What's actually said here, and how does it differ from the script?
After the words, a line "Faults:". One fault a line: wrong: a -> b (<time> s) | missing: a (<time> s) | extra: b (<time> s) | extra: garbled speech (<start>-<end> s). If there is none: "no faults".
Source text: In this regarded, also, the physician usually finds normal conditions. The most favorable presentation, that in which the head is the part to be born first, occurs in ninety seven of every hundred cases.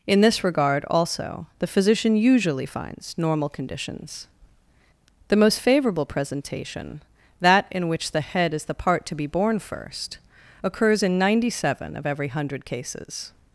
In this regard, also, the physician usually finds normal conditions. The most favorable presentation, that in which the head is the part to be born first, occurs in ninety seven of every hundred cases.
Faults:
wrong: regarded -> regard (0.4 s)